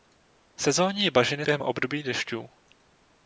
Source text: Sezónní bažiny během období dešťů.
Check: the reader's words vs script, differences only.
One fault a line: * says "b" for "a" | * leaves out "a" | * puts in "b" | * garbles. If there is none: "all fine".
all fine